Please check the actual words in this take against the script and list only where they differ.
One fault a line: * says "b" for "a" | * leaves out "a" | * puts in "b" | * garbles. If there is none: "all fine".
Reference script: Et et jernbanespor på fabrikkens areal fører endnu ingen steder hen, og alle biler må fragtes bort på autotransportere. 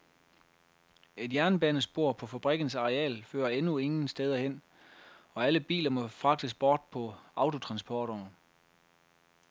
* leaves out "et"